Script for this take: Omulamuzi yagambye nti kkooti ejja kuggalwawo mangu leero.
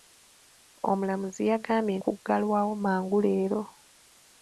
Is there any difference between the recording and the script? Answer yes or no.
yes